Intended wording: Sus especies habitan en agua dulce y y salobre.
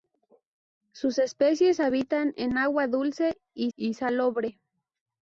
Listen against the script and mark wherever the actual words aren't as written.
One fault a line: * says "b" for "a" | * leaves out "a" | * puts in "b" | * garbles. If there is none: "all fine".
all fine